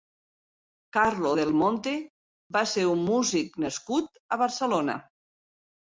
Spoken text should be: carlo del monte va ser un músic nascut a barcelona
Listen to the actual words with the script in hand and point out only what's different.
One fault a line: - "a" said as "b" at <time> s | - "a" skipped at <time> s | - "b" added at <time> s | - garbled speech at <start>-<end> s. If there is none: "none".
none